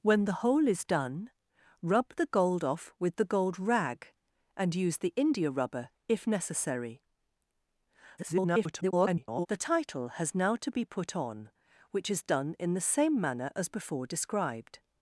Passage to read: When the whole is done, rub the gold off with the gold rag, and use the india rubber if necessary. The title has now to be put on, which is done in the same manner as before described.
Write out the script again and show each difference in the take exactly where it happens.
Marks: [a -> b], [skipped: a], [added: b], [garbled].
When the whole is done, rub the gold off with the gold rag, and use the india rubber if necessary. [garbled] The title has now to be put on, which is done in the same manner as before described.